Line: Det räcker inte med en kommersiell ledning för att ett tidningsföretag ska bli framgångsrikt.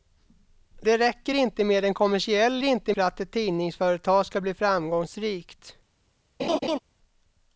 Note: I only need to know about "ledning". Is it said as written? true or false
false